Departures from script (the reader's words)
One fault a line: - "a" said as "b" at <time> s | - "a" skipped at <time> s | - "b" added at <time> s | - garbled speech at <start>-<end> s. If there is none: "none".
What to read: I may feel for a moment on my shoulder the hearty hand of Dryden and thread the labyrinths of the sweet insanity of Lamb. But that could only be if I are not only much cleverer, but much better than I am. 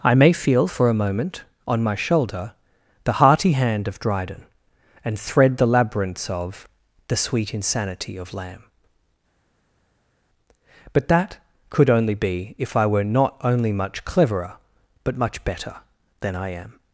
- "are" said as "were" at 12.9 s